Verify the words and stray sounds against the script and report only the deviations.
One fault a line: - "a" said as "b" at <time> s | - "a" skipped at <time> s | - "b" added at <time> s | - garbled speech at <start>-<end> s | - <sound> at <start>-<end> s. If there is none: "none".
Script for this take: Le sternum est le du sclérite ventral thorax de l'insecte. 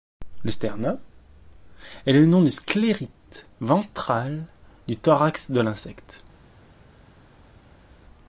- "nom" added at 2.2 s
- "du" added at 4.9 s